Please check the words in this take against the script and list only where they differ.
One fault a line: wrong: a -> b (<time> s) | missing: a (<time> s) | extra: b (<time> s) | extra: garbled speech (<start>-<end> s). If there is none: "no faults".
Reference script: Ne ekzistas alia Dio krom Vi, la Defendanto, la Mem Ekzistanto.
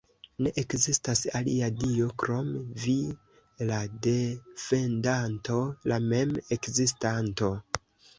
no faults